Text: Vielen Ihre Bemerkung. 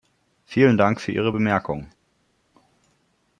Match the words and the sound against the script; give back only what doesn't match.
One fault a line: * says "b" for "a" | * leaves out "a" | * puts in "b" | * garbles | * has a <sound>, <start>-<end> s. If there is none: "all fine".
* puts in "Dank für"